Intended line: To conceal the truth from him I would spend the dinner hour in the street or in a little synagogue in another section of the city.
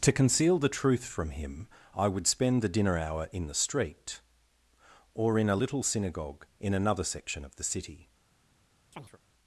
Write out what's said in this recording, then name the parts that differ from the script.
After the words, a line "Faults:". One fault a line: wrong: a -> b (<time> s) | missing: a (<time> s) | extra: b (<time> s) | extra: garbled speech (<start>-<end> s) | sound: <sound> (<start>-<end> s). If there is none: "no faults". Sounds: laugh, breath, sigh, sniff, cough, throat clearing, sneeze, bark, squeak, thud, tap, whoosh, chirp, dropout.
To conceal the truth from him I would spend the dinner hour in the street or in a little synagogue in another section of the city.
Faults:
sound: chirp (8.9-9.2 s)